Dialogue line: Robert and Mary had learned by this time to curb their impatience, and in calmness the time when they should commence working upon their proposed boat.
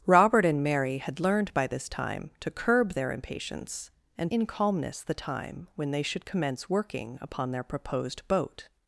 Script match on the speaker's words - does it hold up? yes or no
yes